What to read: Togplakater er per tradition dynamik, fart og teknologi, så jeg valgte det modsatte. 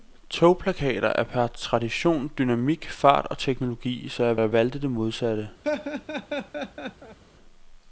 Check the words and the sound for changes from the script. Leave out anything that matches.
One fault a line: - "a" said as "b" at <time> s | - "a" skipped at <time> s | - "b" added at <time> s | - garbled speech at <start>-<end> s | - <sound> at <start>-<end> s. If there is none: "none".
- "jeg" added at 4.4 s
- laugh at 5.6-7.2 s